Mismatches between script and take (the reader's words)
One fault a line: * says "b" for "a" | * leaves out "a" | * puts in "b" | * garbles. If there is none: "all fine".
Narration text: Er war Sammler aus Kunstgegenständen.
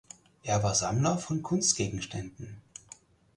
* says "von" for "aus"